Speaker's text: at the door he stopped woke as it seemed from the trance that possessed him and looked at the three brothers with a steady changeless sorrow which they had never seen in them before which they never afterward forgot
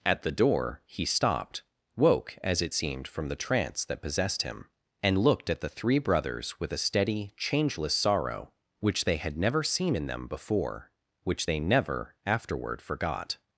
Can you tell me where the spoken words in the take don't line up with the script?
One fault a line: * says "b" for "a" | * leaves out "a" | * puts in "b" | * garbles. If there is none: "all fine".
all fine